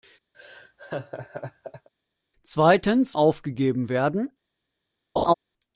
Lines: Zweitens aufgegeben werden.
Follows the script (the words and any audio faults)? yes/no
no